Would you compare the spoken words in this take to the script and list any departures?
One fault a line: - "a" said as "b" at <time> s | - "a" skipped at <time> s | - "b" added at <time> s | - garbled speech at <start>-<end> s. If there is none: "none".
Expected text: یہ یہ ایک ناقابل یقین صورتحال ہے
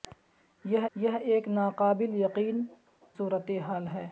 none